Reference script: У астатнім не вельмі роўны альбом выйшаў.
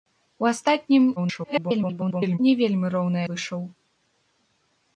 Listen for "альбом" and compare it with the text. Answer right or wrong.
wrong